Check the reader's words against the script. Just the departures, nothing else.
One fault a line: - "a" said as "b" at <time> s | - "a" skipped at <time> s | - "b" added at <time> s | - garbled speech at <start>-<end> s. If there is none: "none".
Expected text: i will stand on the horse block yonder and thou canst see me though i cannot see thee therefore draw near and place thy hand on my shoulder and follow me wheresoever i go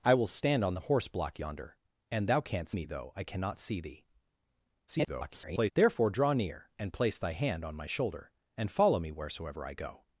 - "see" skipped at 2.8 s
- garbled speech at 4.9-5.7 s